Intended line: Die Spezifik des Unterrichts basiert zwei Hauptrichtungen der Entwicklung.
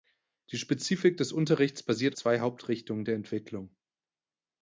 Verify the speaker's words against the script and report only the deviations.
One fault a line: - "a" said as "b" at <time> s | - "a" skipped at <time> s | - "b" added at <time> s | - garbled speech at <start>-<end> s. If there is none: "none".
none